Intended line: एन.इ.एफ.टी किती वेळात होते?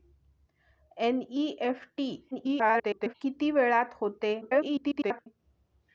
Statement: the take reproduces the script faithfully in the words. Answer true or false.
false